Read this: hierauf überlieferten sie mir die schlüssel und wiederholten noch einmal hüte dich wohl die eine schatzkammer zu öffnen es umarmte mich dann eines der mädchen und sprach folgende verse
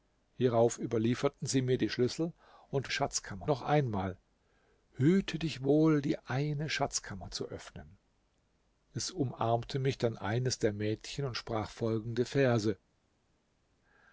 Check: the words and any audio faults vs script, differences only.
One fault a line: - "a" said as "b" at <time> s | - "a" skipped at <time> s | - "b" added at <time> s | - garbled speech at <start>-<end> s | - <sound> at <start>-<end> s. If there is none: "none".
- "wiederholten" said as "schatzkammer" at 2.9 s